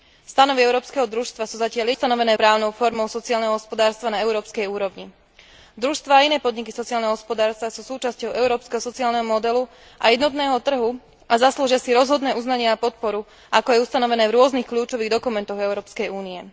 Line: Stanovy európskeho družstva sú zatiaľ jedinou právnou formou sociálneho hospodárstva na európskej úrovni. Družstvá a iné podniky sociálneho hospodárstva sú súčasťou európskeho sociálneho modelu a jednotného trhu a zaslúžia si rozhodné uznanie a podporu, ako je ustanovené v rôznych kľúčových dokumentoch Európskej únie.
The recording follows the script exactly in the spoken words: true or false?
false